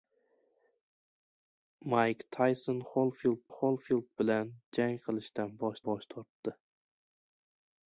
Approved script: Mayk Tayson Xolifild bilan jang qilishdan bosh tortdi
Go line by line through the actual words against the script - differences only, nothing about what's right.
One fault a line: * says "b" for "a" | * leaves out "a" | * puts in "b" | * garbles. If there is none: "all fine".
* puts in "Xolifild"
* puts in "bosh"